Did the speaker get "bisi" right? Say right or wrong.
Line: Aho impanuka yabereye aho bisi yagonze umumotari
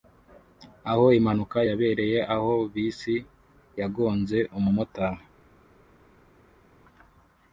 right